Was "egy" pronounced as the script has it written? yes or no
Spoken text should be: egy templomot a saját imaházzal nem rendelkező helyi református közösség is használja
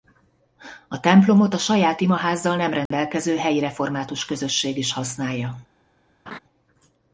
no